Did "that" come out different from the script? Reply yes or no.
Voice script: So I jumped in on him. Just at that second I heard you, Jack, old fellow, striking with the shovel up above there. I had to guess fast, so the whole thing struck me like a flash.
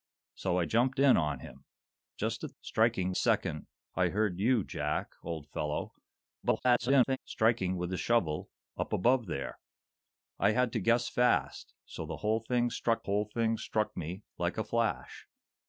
yes